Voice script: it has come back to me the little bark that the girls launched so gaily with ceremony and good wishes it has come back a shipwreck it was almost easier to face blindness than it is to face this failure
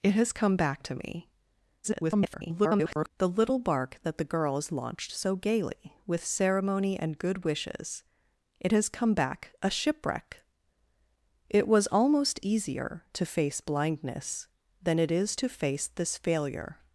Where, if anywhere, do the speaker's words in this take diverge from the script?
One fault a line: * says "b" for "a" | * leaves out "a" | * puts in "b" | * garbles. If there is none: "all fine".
* garbles